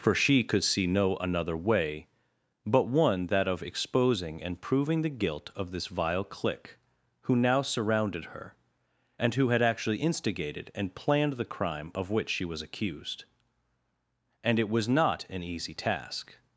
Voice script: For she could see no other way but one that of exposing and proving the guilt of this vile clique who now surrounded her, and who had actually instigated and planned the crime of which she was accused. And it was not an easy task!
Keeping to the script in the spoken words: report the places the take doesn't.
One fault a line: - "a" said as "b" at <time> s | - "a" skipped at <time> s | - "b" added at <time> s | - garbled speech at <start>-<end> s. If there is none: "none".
- "other" said as "another" at 1.2 s